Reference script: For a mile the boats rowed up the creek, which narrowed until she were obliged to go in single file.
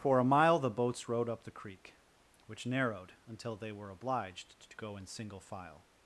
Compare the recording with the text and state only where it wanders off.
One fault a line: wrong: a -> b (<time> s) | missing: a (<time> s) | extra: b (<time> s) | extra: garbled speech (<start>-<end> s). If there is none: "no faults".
wrong: she -> they (3.5 s)